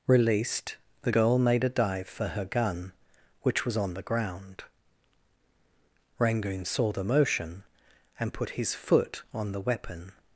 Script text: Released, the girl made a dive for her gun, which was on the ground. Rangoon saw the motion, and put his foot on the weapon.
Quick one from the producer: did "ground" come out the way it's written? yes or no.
yes